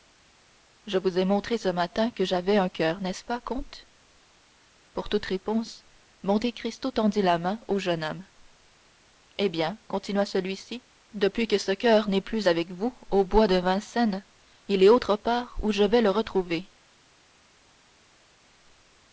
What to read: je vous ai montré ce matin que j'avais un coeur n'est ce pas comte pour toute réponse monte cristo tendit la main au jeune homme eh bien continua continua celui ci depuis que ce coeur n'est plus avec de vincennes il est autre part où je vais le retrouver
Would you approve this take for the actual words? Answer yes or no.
no